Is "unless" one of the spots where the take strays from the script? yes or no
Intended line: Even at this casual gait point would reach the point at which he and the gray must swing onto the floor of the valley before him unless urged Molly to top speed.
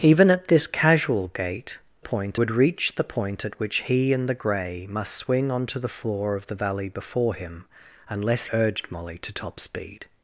no